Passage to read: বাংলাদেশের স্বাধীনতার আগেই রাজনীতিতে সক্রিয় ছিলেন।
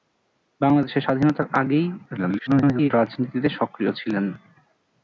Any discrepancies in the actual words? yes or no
yes